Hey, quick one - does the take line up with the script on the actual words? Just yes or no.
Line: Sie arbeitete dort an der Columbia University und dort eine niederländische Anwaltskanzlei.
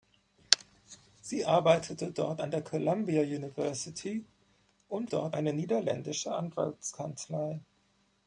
yes